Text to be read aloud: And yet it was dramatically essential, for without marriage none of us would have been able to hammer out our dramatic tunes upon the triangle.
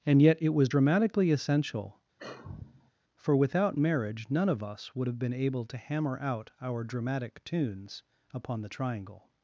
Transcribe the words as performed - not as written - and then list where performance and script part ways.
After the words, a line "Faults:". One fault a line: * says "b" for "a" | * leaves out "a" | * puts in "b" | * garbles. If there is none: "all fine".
And yet it was dramatically essential, for without marriage none of us would have been able to hammer out our dramatic tunes upon the triangle.
Faults:
all fine